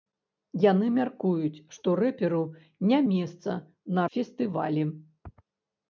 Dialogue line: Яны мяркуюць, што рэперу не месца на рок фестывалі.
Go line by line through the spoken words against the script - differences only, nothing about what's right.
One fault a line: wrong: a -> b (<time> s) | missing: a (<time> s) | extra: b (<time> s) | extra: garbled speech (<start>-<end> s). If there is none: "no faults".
missing: рок (4.0 s)